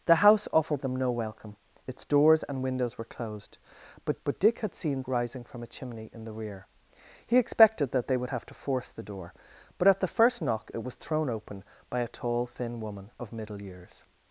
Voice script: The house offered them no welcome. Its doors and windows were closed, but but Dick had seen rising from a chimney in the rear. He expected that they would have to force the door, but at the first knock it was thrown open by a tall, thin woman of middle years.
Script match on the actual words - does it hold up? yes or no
yes